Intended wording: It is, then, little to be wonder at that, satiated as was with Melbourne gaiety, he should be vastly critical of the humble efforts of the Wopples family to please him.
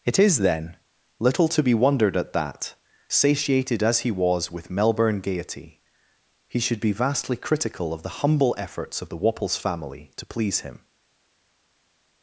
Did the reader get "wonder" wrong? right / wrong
wrong